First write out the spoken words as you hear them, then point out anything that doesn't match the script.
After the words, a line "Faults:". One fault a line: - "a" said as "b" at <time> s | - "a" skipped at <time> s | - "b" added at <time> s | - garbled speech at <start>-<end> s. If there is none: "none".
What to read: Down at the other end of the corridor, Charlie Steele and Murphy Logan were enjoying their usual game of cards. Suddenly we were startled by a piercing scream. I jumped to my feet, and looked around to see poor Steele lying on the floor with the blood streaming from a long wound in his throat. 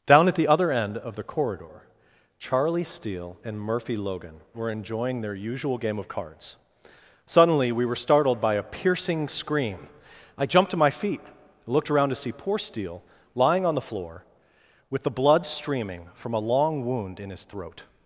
Down at the other end of the corridor, Charlie Steele and Murphy Logan were enjoying their usual game of cards. Suddenly we were startled by a piercing scream. I jumped to my feet, looked around to see poor Steele lying on the floor with the blood streaming from a long wound in his throat.
Faults:
- "and" skipped at 11.2 s